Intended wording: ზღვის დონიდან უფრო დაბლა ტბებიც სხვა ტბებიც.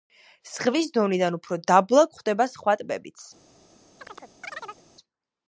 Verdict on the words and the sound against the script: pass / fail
fail